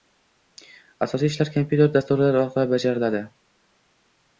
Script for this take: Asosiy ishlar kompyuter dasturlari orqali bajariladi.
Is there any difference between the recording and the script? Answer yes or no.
no